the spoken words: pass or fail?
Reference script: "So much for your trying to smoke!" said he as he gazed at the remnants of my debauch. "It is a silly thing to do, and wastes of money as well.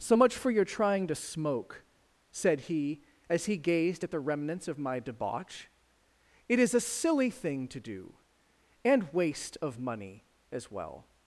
fail